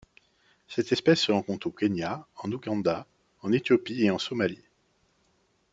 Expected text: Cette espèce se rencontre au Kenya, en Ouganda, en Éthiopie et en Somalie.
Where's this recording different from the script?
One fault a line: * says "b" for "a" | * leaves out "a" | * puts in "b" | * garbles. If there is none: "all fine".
all fine